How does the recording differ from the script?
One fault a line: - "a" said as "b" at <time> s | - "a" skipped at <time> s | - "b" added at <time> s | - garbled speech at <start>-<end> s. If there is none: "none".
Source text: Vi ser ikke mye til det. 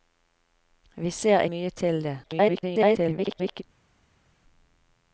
- "ikke" skipped at 1.4 s
- garbled speech at 2.2-3.6 s